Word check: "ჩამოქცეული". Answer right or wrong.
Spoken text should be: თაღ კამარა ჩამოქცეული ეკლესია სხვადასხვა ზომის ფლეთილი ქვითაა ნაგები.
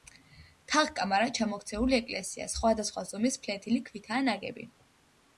right